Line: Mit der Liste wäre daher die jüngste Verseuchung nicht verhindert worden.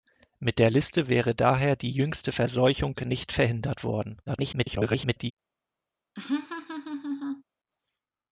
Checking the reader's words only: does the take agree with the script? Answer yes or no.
no